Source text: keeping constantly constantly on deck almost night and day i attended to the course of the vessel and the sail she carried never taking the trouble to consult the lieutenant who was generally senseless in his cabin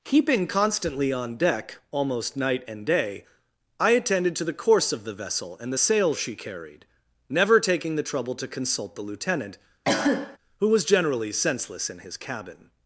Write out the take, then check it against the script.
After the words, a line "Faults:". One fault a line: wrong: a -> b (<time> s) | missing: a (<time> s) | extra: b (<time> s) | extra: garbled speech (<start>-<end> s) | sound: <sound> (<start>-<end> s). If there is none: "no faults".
keeping constantly on deck almost night and day i attended to the course of the vessel and the sail she carried never taking the trouble to consult the lieutenant who was generally senseless in his cabin
Faults:
missing: constantly (1.1 s)
sound: cough (9.8-10.4 s)